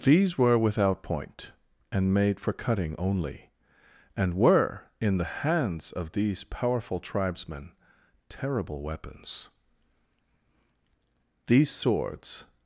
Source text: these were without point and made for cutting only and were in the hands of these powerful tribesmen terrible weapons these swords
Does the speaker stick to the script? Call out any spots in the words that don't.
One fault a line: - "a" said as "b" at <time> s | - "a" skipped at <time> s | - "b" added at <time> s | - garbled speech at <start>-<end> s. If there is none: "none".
none